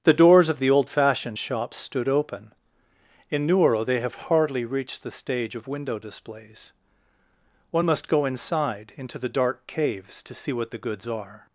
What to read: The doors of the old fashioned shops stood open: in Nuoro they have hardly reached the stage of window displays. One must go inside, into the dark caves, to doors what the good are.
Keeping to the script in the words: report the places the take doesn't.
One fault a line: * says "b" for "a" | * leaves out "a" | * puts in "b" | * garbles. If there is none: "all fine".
* says "see" for "doors"
* says "goods" for "good"